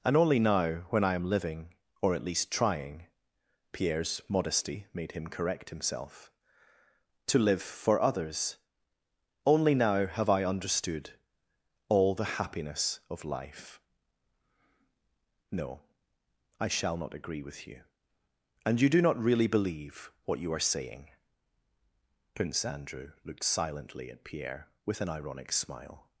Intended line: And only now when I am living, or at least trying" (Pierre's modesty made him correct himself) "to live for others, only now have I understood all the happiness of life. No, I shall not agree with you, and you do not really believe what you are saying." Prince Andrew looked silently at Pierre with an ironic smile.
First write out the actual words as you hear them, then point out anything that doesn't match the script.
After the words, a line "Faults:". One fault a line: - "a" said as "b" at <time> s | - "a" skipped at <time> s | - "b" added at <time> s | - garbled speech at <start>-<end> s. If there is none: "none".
And only now when I am living, or at least trying" (Pierre's modesty made him correct himself) "to live for others, only now have I understood all the happiness of life. No, I shall not agree with you, and you do not really believe what you are saying." Prince Andrew looked silently at Pierre with an ironic smile.
Faults:
none